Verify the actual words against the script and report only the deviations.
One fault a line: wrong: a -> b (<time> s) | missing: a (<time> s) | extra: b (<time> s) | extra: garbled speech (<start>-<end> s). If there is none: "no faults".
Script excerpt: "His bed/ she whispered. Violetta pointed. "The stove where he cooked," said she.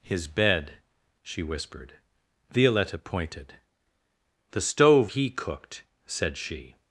missing: where (5.1 s)